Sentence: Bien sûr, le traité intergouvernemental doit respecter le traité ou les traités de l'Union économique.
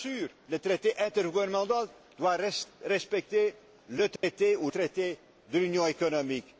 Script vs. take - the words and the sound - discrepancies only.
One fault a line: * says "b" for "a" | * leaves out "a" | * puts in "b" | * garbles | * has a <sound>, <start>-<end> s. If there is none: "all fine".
* has a dropout, 4.2-4.2 s
* leaves out "les"